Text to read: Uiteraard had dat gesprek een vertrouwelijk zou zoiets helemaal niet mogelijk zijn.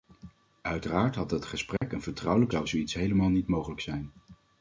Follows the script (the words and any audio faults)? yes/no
no